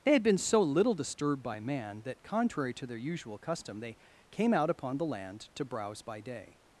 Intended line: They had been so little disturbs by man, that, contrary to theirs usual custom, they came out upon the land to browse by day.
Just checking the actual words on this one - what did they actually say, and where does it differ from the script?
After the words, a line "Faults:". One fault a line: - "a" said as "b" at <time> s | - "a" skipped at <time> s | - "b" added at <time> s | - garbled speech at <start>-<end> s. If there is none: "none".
They had been so little disturbed by man, that, contrary to their usual custom, they came out upon the land to browse by day.
Faults:
- "disturbs" said as "disturbed" at 0.9 s
- "theirs" said as "their" at 2.9 s